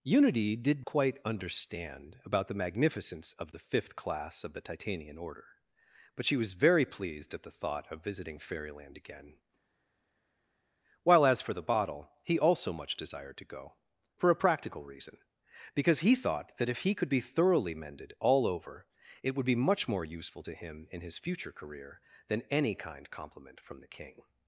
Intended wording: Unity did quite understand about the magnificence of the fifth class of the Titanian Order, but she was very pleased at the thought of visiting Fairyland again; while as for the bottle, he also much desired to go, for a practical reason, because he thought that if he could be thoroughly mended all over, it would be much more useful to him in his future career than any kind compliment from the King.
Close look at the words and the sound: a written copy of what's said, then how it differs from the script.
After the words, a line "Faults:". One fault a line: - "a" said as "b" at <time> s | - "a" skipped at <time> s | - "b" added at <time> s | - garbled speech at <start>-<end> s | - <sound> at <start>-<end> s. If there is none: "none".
Unity did quite understand about the magnificence of the fifth class of the Titanian Order, but she was very pleased at the thought of visiting Fairyland again; while as for the bottle, he also much desired to go, for a practical reason, because he thought that if he could be thoroughly mended all over, it would be much more useful to him in his future career than any kind compliment from the King.
Faults:
none